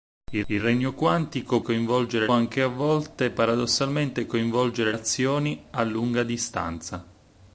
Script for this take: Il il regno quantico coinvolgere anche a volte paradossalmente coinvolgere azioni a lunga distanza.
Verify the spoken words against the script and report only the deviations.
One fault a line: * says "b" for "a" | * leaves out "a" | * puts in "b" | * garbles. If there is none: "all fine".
all fine